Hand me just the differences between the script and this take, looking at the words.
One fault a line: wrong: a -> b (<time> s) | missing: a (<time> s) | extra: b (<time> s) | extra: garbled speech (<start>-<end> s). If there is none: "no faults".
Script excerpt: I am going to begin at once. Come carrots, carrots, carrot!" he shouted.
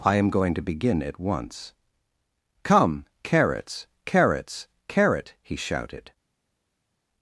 no faults